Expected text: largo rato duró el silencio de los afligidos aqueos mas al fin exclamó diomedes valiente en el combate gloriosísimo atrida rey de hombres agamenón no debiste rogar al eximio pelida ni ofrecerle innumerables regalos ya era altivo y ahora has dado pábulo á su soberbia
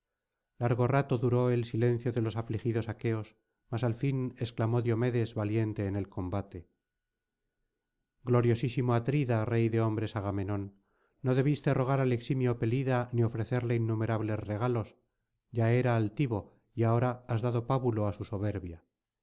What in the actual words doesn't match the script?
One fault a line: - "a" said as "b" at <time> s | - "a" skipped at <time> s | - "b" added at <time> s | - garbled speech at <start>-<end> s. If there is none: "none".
none